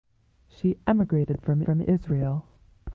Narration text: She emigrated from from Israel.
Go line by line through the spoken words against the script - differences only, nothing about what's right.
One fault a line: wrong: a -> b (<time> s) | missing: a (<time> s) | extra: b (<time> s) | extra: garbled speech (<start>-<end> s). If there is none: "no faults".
no faults